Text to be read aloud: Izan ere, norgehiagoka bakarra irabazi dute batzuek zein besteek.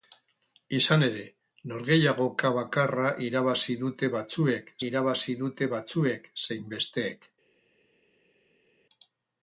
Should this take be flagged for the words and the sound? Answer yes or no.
yes